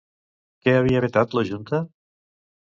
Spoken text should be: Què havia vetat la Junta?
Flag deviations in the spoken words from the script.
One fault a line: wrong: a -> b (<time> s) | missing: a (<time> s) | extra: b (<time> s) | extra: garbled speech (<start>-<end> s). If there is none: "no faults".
no faults